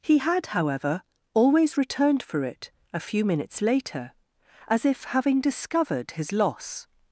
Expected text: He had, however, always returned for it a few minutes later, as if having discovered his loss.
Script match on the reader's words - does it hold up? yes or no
yes